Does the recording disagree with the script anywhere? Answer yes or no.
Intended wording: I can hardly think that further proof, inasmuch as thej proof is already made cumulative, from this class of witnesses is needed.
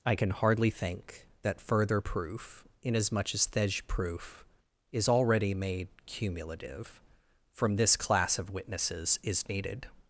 no